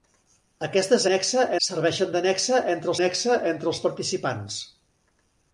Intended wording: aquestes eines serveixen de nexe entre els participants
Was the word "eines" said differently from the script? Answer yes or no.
yes